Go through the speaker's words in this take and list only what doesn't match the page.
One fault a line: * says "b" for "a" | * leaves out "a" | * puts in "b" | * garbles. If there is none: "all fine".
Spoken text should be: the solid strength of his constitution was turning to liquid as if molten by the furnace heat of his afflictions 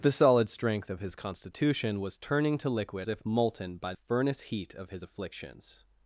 * leaves out "as"
* leaves out "the"